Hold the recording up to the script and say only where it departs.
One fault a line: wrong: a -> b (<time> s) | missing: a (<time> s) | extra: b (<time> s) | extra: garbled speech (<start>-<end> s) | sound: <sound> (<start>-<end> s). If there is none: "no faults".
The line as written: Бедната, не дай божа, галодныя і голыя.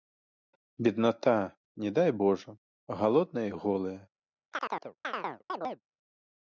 sound: chirp (4.5-5.8 s)